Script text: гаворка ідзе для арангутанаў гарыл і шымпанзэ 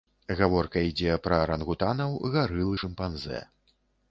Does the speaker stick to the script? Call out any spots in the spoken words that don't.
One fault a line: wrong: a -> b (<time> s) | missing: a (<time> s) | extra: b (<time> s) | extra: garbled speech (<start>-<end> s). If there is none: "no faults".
wrong: для -> пра (1.3 s)